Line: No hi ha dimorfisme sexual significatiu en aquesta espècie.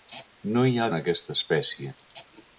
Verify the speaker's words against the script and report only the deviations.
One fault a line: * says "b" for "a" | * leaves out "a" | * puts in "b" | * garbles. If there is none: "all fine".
* leaves out "dimorfisme sexual significatiu"